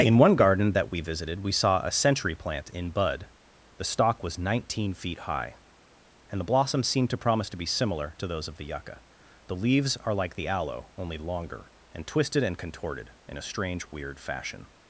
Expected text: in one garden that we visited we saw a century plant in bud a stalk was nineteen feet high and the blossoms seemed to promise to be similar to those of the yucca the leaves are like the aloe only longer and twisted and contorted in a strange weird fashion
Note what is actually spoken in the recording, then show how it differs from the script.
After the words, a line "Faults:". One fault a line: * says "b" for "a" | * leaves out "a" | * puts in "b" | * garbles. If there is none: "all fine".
in one garden that we visited we saw a century plant in bud the stalk was nineteen feet high and the blossoms seemed to promise to be similar to those of the yucca the leaves are like the aloe only longer and twisted and contorted in a strange weird fashion
Faults:
* says "the" for "a"